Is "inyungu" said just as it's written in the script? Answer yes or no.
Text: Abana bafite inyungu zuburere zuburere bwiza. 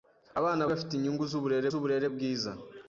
yes